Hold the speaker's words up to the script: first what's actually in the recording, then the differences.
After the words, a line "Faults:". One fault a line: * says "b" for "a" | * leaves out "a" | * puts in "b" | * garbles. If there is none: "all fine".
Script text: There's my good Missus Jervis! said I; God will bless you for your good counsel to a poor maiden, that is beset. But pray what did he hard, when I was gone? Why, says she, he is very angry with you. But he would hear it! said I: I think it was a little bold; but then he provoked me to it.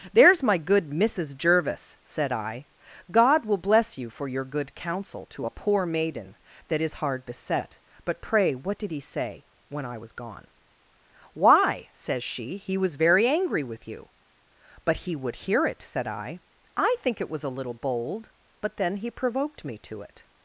There's my good Missus Jervis! said I; God will bless you for your good counsel to a poor maiden, that is hard beset. But pray what did he say, when I was gone? Why, says she, he was very angry with you. But he would hear it! said I: I think it was a little bold; but then he provoked me to it.
Faults:
* puts in "hard"
* says "say" for "hard"
* says "was" for "is"